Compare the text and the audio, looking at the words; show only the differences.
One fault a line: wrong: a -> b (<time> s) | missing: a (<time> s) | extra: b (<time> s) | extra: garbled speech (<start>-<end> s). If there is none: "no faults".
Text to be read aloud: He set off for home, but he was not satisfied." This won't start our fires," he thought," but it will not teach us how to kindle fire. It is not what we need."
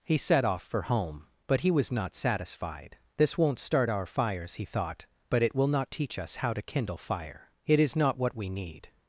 no faults